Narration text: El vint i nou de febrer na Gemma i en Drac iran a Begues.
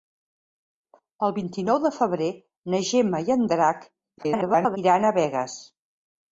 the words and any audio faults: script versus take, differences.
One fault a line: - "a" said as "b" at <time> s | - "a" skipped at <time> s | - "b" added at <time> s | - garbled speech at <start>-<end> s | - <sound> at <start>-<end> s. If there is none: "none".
- garbled speech at 4.2-4.8 s